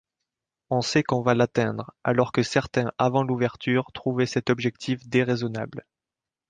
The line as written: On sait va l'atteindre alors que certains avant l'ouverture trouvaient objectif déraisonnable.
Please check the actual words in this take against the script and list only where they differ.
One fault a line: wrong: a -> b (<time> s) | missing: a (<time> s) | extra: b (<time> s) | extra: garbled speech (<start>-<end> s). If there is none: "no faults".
extra: qu'on (1.0 s)
extra: cet (4.3 s)